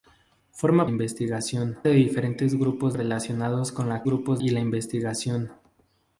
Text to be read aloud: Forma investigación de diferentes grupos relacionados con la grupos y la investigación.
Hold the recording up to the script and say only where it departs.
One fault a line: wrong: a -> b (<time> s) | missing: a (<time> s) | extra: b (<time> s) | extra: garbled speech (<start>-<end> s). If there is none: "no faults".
no faults